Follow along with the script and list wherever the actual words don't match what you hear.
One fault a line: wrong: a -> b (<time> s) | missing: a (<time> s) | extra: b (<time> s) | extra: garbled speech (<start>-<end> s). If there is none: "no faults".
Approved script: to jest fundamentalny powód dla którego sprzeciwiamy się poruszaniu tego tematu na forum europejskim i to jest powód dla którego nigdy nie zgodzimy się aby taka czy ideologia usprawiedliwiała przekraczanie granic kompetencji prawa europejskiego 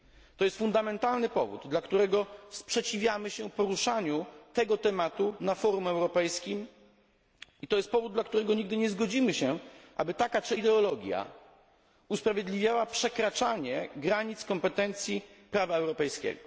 no faults